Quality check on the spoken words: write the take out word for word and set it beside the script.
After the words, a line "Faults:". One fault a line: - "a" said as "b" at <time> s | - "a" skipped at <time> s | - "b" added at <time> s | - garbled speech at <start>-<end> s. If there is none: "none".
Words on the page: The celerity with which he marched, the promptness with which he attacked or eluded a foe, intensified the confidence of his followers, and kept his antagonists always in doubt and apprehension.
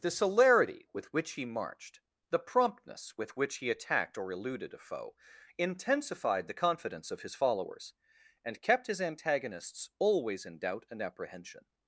The celerity with which he marched, the promptness with which he attacked or eluded a foe, intensified the confidence of his followers, and kept his antagonists always in doubt and apprehension.
Faults:
none